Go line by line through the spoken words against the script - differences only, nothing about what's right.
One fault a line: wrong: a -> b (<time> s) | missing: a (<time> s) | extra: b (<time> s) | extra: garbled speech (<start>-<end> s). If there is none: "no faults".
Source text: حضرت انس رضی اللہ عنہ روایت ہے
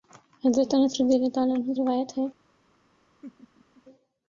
no faults